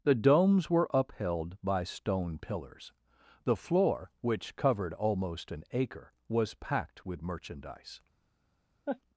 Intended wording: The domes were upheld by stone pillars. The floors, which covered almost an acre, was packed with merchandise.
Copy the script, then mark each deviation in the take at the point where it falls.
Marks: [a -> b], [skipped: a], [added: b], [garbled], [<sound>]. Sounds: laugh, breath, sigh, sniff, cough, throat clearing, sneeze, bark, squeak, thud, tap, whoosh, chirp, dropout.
The domes were upheld by stone pillars. The [floors, -> floor] which covered almost an acre, was packed with merchandise. [laugh]